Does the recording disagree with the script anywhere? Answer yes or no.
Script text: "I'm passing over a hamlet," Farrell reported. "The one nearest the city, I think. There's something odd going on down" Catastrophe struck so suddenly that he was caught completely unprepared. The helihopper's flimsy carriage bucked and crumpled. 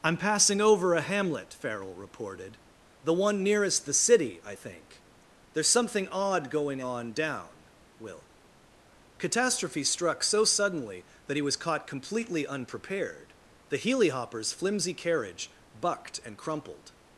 yes